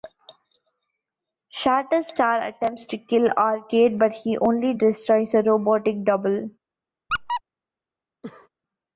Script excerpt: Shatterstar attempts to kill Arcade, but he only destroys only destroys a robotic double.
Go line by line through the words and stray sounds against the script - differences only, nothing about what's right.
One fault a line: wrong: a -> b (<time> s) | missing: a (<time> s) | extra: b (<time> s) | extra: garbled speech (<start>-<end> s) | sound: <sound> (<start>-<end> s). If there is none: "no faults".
missing: only destroys (5.3 s)
sound: squeak (7.1-7.4 s)
sound: cough (8.2-8.5 s)